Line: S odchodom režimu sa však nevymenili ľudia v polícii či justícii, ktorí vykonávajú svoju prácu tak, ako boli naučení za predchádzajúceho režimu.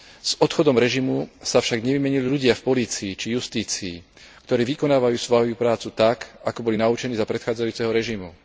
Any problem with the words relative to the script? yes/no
no